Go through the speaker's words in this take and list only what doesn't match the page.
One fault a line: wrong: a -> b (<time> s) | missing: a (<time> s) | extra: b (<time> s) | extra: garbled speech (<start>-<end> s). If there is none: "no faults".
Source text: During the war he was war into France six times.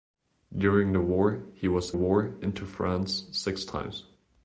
no faults